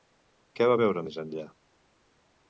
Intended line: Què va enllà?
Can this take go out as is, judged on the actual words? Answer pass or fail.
fail